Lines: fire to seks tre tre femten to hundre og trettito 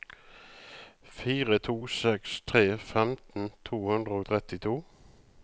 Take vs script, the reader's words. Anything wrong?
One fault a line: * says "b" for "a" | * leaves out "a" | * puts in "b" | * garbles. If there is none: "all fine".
* leaves out "tre"